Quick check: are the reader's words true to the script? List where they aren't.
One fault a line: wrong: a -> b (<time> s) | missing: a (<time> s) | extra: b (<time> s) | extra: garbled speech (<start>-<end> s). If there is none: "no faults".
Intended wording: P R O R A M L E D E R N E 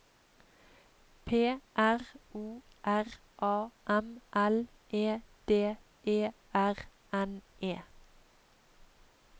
no faults